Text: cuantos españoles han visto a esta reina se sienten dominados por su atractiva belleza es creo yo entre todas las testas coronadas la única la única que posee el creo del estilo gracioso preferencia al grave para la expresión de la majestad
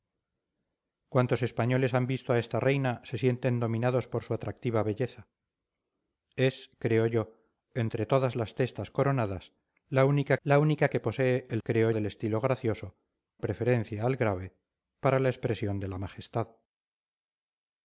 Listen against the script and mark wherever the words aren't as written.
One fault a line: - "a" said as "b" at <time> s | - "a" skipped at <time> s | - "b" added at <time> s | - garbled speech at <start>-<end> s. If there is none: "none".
none